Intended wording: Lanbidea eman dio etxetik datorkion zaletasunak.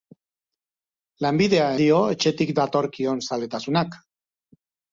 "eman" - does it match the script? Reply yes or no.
no